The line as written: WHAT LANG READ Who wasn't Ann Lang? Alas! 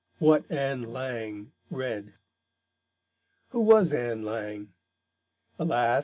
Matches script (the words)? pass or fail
fail